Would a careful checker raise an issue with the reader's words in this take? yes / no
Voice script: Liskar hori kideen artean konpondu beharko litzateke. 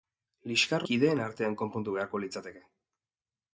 yes